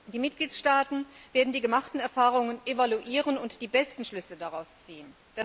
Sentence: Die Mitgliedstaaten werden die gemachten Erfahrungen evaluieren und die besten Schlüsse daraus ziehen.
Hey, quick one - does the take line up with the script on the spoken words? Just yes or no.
yes